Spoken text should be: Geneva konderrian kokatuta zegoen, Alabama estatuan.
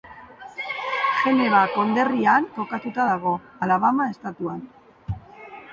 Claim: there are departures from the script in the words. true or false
true